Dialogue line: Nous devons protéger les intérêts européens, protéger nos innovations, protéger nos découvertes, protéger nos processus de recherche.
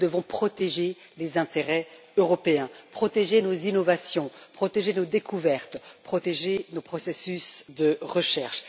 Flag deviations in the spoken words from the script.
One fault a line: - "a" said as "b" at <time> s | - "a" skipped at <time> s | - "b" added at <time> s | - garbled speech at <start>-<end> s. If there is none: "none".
none